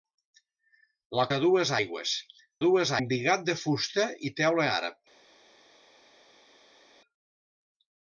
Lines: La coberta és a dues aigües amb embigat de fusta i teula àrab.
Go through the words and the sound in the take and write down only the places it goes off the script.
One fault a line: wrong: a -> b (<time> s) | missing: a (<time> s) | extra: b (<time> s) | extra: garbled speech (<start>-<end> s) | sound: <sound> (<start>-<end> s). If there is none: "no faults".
missing: coberta és (1.2 s)
wrong: amb -> dues (2.6 s)